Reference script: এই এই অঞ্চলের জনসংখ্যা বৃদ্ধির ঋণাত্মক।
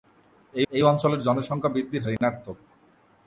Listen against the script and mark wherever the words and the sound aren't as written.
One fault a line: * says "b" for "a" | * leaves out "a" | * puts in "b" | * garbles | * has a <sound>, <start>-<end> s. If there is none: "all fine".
* has a dropout, 2.2-2.2 s